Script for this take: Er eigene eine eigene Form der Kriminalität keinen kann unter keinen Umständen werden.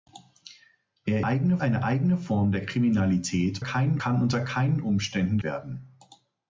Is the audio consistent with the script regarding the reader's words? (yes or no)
yes